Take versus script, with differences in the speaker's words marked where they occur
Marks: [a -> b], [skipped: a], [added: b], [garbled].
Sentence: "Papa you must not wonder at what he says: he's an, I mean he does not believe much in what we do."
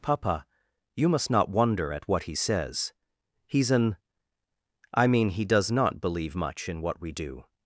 "Papa you must not wonder at what he says: he's an, I mean he does not believe much in what we do."